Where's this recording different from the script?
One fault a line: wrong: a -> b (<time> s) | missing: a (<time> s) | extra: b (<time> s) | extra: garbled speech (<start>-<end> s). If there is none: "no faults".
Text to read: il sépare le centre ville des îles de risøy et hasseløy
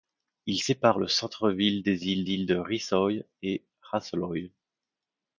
extra: îles (2.3 s)